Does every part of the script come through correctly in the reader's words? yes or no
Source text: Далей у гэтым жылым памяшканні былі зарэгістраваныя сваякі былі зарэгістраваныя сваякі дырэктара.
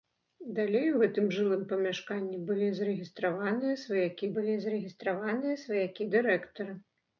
yes